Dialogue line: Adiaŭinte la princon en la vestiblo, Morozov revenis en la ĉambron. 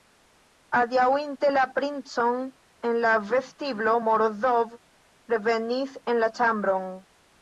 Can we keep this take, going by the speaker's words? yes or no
yes